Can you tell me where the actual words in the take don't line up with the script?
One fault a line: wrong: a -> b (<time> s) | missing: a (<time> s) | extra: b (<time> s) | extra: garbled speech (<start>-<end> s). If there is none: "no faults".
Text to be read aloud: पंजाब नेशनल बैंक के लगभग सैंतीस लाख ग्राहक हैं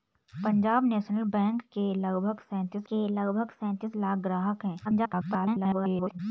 extra: के लगभग सैंतीस (2.9 s)
extra: garbled speech (4.8-6.2 s)